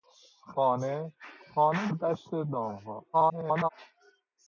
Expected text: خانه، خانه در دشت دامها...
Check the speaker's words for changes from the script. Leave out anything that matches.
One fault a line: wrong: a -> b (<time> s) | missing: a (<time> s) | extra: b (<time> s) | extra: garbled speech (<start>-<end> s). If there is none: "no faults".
missing: در (1.9 s)
extra: garbled speech (3.1-3.7 s)